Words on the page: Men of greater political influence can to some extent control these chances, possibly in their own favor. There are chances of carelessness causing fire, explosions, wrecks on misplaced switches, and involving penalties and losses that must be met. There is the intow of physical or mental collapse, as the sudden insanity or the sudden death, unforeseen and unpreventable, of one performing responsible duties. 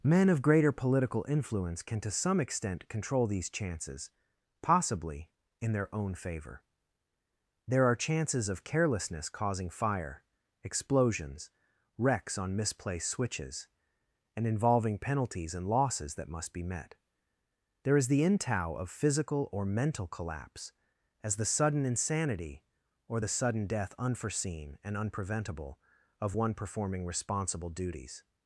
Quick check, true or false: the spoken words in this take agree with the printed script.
true